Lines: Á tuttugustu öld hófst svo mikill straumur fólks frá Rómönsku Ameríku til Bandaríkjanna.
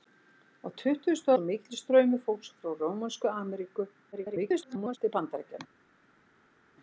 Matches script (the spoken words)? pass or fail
fail